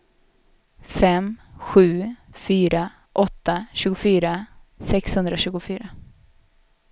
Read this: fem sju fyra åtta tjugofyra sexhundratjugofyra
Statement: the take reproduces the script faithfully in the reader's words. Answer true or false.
true